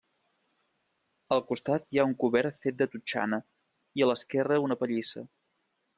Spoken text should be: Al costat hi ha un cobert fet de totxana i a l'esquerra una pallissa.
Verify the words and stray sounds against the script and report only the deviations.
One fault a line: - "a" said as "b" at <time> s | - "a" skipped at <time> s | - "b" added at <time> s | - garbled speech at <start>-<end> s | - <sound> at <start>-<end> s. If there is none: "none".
none